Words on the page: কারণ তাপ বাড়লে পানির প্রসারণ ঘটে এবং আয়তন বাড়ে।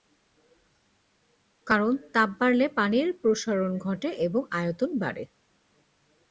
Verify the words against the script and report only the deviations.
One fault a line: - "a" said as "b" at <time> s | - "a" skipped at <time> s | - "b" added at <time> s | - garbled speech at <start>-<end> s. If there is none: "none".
none